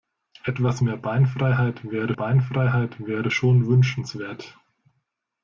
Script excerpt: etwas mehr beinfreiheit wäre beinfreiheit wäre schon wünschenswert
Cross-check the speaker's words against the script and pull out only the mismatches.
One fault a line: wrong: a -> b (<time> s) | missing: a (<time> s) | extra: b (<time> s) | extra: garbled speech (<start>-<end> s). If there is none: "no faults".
no faults